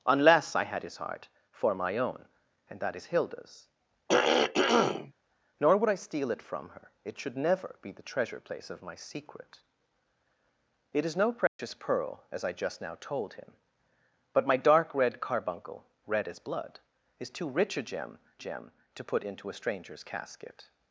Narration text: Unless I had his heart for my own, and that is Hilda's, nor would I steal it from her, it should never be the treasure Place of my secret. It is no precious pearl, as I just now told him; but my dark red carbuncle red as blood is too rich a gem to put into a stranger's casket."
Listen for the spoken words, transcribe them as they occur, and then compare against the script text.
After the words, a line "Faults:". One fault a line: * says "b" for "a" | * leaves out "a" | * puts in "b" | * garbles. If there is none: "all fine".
Unless I had his heart for my own, and that is Hilda's, nor would I steal it from her, it should never be the treasure Place of my secret. It is no precious pearl, as I just now told him; but my dark red carbuncle red as blood is too rich a gem gem to put into a stranger's casket."
Faults:
* puts in "gem"